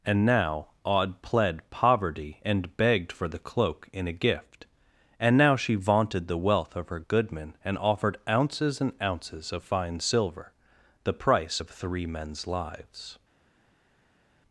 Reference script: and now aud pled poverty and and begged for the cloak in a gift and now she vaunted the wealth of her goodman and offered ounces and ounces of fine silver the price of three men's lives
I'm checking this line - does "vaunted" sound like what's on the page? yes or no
yes